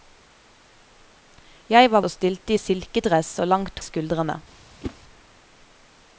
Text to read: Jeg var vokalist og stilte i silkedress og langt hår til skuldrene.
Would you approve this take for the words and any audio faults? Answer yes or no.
no